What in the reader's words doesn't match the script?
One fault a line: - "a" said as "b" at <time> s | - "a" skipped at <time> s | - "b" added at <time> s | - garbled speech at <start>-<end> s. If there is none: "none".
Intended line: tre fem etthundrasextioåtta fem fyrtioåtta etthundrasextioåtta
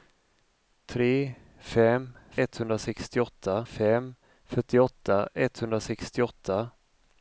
none